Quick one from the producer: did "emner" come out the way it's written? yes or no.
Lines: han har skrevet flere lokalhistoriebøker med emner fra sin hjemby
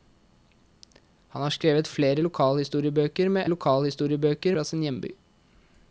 no